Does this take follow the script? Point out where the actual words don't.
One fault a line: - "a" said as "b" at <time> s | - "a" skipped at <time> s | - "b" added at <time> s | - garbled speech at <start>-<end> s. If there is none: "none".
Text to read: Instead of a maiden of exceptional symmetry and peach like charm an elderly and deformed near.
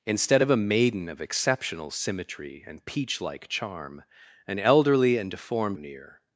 none